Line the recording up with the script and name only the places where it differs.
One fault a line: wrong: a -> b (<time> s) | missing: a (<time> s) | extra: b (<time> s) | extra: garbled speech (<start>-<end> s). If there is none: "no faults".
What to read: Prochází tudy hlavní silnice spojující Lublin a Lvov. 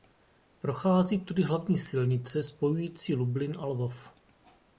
no faults